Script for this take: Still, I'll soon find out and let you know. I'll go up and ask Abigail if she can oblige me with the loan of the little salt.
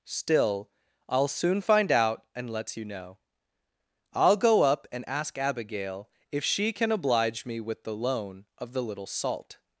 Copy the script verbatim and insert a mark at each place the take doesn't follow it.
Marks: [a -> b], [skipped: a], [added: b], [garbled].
Still, I'll soon find out and let you know. I'll go up and ask Abigail if she can oblige me with the loan of the little salt.